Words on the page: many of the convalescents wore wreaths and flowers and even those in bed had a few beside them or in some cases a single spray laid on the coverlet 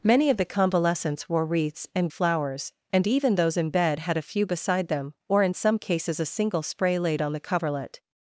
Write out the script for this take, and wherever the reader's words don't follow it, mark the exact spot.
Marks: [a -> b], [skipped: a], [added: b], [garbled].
many of the convalescents wore wreaths and flowers and even those in bed had a few beside them or in some cases a single spray laid on the coverlet